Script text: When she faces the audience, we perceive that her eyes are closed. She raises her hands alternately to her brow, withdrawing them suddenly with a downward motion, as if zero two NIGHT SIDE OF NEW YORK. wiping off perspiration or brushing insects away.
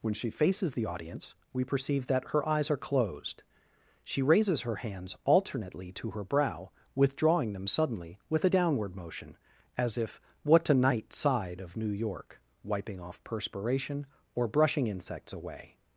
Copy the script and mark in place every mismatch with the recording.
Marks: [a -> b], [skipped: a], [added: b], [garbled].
When she faces the audience, we perceive that her eyes are closed. She raises her hands alternately to her brow, withdrawing them suddenly with a downward motion, as if [zero two -> what a] NIGHT SIDE OF NEW YORK. wiping off perspiration or brushing insects away.